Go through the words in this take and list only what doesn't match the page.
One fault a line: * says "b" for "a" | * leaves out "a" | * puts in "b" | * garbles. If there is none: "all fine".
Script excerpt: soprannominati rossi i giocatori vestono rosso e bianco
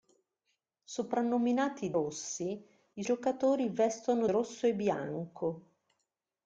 all fine